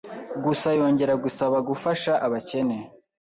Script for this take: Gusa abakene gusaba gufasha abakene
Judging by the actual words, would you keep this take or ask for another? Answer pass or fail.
fail